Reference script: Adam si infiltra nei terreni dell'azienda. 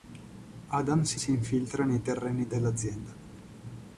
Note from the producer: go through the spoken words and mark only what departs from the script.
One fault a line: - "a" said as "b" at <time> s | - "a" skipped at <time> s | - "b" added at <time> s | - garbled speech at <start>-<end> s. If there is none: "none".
- "si" added at 1.1 s